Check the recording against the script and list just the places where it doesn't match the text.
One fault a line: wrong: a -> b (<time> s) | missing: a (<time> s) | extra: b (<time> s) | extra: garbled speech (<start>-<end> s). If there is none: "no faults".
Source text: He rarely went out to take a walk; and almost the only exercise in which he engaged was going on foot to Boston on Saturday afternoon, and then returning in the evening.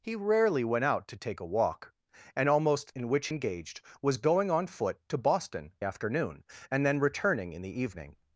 missing: the only exercise (3.0 s)
missing: he (3.3 s)
missing: on Saturday (5.7 s)